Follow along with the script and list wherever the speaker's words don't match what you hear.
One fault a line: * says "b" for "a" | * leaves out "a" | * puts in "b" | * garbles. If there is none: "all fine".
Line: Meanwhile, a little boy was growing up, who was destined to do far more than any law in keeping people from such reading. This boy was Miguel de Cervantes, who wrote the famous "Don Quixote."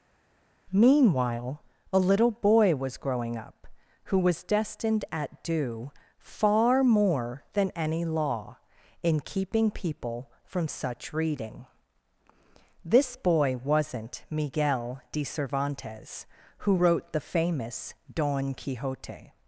* says "at" for "to"
* says "wasn't" for "was"